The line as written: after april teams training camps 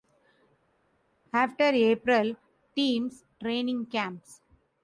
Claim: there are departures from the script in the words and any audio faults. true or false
false